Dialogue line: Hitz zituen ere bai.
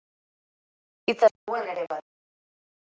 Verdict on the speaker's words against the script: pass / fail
pass